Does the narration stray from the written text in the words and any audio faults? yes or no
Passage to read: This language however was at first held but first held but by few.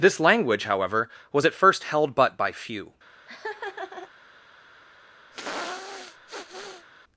yes